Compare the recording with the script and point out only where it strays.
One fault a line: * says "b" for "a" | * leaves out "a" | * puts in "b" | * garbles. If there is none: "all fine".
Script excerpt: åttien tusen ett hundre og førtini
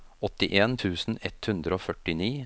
all fine